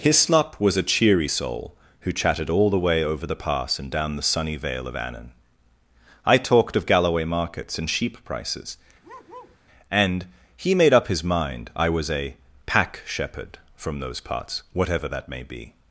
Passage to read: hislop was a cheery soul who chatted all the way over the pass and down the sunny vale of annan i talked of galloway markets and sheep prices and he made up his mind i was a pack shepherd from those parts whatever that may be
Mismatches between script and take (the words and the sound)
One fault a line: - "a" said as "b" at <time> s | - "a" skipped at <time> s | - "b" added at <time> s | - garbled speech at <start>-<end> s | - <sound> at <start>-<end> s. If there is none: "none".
- bark at 9.0-9.6 s